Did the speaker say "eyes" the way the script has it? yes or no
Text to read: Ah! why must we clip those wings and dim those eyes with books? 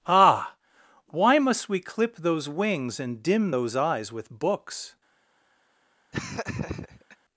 yes